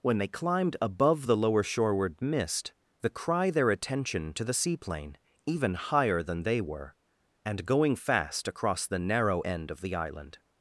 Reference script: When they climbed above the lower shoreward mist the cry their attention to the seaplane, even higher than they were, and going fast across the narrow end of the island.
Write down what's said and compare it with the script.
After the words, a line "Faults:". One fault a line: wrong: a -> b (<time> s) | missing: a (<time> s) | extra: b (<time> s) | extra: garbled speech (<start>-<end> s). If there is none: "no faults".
When they climbed above the lower shoreward mist the cry their attention to the seaplane, even higher than they were, and going fast across the narrow end of the island.
Faults:
no faults